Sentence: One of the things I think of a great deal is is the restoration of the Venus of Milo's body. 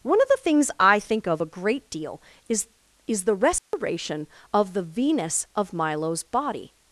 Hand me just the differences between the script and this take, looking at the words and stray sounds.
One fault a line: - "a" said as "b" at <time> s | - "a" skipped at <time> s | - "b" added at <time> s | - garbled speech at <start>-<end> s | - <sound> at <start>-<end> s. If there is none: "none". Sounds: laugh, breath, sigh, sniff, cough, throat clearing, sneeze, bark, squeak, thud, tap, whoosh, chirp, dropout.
- dropout at 3.6-3.7 s